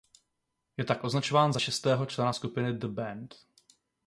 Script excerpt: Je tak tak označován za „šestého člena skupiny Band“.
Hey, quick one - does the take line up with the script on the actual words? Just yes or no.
no